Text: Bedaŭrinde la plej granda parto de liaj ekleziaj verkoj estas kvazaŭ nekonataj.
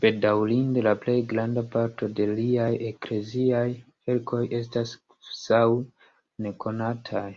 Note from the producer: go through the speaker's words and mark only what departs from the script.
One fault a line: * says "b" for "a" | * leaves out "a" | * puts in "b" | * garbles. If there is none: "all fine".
all fine